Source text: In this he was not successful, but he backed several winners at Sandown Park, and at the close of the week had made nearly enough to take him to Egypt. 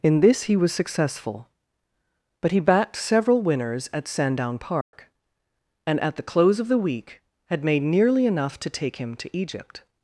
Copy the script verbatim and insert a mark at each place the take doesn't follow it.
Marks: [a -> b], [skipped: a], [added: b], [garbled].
In this he was [skipped: not] successful, but he backed several winners at Sandown Park, and at the close of the week had made nearly enough to take him to Egypt.